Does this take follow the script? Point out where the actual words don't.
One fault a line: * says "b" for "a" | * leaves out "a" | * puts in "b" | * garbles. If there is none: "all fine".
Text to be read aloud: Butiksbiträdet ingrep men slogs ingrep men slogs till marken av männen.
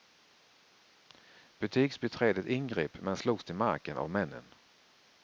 * leaves out "ingrep men slogs"